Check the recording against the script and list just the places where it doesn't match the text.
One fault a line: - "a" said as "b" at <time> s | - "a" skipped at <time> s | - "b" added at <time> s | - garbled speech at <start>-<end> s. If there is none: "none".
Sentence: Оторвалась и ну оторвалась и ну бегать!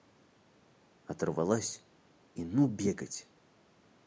- "оторвалась и ну" skipped at 2.7 s